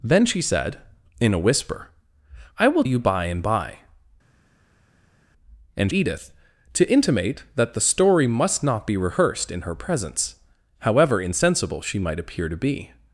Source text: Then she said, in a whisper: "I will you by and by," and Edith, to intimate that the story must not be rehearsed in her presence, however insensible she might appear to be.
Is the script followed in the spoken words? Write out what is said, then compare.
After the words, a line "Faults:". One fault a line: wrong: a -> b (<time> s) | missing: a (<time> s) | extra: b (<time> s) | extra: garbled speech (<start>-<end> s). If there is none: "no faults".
Then she said, in a whisper: "I will you by and by," and Edith, to intimate that the story must not be rehearsed in her presence, however insensible she might appear to be.
Faults:
no faults